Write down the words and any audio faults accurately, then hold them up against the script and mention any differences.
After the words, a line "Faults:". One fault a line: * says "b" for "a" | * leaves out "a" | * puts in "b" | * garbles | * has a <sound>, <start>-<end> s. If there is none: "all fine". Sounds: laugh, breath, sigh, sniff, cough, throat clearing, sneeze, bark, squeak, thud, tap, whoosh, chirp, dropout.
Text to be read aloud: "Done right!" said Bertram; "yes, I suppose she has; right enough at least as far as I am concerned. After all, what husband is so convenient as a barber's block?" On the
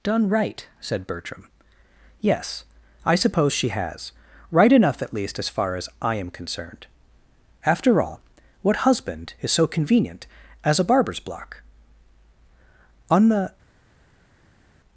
"Done right!" said Bertram; "yes, I suppose she has; right enough at least as far as I am concerned. After all, what husband is so convenient as a barber's block?" On the
Faults:
all fine